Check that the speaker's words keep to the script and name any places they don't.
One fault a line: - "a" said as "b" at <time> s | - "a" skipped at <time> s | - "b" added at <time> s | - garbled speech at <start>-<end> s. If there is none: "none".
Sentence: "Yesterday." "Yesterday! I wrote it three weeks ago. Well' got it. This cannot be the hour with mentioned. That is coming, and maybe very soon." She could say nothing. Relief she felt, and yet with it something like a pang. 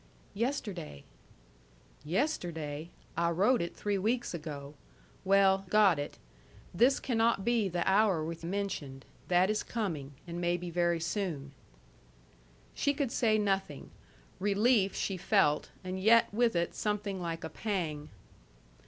none